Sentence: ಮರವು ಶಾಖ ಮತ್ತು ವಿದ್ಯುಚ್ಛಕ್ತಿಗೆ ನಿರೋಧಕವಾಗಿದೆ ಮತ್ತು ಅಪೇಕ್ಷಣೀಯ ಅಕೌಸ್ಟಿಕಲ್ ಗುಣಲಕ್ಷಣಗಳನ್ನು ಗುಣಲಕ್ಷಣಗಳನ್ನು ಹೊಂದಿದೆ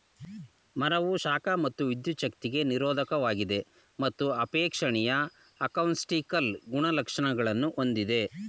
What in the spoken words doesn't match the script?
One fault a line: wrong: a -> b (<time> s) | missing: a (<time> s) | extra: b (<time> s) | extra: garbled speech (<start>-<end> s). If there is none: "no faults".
missing: ಗುಣಲಕ್ಷಣಗಳನ್ನು (7.7 s)